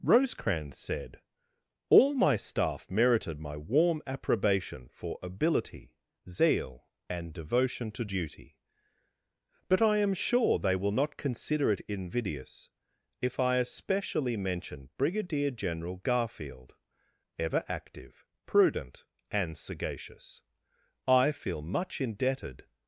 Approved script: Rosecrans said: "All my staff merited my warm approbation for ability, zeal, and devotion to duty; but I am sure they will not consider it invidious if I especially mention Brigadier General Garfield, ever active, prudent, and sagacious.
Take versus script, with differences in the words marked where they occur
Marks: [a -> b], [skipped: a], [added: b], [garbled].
Rosecrans said: "All my staff merited my warm approbation for ability, zeal, and devotion to duty; but I am sure they will not consider it invidious if I especially mention Brigadier General Garfield, ever active, prudent, and sagacious. [added: I feel much indebted]